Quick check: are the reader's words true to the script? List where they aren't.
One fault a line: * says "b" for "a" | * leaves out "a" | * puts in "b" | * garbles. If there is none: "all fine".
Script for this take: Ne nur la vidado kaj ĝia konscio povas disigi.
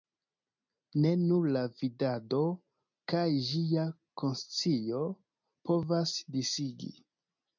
all fine